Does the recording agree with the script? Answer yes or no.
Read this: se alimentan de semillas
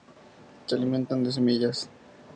yes